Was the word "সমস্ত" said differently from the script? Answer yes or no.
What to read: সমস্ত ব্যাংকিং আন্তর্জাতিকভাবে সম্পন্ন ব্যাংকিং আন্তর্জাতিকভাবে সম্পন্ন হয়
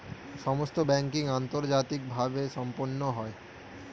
no